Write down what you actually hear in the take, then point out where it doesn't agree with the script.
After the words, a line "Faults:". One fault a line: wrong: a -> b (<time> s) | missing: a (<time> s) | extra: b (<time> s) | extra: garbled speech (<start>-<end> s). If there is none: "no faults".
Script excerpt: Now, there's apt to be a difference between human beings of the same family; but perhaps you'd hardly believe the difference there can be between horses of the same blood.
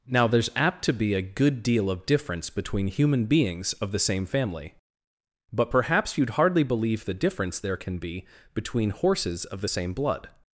Now, there's apt to be a good deal of difference between human beings of the same family; but perhaps you'd hardly believe the difference there can be between horses of the same blood.
Faults:
extra: good deal of (1.2 s)